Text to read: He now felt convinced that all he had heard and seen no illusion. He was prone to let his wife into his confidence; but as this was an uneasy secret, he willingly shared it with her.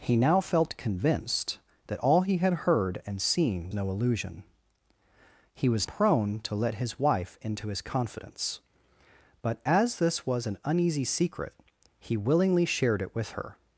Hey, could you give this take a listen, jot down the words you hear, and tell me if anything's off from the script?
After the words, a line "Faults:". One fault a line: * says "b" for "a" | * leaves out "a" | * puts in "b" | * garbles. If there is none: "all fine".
He now felt convinced that all he had heard and seen no illusion. He was prone to let his wife into his confidence; but as this was an uneasy secret, he willingly shared it with her.
Faults:
all fine